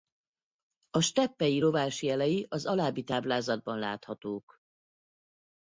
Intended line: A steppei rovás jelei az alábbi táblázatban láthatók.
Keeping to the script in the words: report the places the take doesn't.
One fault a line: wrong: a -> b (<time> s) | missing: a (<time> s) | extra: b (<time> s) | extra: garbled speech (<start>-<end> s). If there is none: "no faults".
no faults